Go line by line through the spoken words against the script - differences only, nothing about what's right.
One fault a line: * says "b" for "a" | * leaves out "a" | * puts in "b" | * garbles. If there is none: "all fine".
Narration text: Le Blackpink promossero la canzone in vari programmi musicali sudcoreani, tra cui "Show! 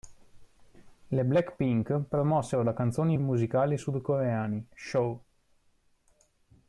* leaves out "vari programmi"
* leaves out "tra cui"